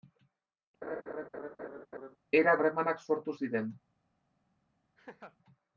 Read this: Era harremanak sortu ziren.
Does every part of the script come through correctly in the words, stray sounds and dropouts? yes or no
no